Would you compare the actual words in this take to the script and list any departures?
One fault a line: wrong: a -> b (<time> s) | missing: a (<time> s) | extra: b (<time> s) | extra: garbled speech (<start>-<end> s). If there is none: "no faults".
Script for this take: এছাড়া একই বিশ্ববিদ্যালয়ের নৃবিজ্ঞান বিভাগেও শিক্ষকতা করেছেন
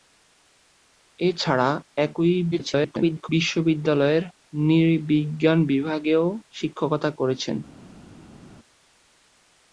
extra: garbled speech (2.5-3.3 s)